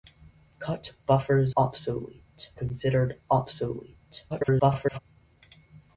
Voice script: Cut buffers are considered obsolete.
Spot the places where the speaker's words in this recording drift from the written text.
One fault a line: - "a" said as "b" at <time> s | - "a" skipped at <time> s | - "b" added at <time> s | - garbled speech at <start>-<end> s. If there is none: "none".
- "are" said as "obsolete" at 1.5 s
- garbled speech at 4.3-5.0 s